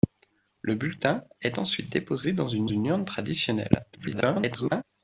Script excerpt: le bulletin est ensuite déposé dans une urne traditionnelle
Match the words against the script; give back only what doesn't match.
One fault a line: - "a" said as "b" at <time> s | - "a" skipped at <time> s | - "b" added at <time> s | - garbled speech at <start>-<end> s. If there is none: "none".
- "une" added at 2.6 s
- garbled speech at 3.9-4.8 s